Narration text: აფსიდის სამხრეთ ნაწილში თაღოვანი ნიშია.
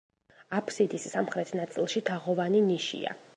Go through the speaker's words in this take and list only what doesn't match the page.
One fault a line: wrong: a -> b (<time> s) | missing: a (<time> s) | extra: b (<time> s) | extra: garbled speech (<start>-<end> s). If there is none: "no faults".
no faults